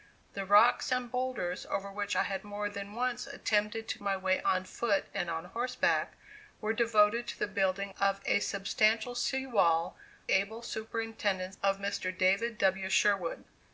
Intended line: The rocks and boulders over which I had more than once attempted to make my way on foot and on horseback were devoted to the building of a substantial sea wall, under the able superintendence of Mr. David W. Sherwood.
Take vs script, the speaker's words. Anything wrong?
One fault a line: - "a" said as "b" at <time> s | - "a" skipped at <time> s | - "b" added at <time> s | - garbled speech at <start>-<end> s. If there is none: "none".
- "make" skipped at 4.0 s
- "under the" skipped at 10.0 s